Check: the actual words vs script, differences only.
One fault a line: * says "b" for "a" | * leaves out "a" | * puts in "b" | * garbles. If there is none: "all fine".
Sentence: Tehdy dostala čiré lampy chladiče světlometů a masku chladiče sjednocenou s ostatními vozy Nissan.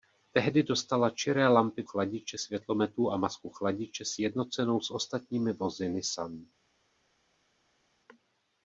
all fine